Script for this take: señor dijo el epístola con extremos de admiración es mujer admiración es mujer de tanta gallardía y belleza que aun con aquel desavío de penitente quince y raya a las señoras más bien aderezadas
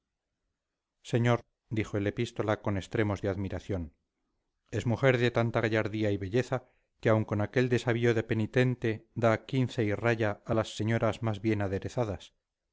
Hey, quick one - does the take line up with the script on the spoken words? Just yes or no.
no